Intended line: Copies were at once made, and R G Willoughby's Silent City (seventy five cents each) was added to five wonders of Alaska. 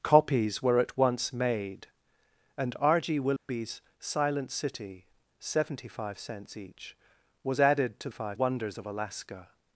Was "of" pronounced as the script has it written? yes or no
yes